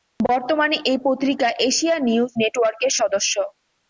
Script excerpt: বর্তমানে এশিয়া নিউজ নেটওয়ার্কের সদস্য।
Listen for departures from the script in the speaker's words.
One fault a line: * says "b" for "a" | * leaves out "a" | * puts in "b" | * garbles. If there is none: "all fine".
* puts in "এই পত্রিকা"